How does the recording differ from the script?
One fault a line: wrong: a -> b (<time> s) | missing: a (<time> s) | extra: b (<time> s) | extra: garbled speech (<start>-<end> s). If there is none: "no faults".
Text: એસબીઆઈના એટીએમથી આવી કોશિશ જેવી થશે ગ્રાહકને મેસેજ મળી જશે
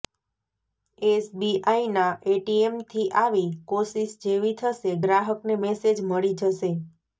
no faults